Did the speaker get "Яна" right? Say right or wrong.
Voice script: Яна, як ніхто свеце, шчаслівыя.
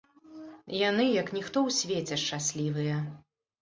wrong